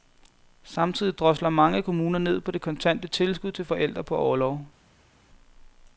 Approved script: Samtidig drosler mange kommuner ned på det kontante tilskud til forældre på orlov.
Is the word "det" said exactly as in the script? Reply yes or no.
yes